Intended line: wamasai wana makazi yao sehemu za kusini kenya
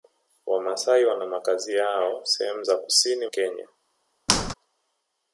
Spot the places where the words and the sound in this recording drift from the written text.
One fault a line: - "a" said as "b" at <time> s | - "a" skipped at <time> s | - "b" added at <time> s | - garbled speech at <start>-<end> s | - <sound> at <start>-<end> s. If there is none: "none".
- squeak at 4.3-4.5 s